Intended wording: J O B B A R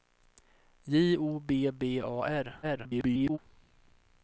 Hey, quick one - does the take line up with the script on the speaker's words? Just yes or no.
no